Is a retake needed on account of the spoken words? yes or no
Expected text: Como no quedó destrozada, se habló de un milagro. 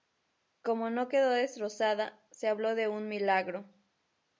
no